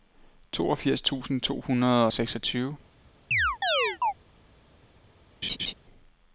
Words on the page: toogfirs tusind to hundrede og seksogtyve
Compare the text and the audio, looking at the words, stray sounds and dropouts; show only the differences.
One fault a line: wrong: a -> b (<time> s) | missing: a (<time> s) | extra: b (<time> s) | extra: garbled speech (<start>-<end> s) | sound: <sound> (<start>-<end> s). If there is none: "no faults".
sound: chirp (3.3-4.1 s)
sound: laugh (5.4-5.7 s)